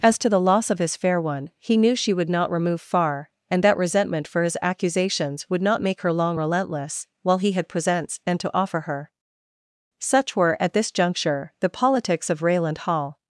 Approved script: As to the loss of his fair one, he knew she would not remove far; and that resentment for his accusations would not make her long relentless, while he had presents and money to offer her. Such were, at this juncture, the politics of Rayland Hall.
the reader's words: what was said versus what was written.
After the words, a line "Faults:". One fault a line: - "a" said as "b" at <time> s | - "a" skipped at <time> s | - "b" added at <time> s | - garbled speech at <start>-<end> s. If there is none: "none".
As to the loss of his fair one, he knew she would not remove far; and that resentment for his accusations would not make her long relentless, while he had presents and to offer her. Such were, at this juncture, the politics of Rayland Hall.
Faults:
- "money" skipped at 8.4 s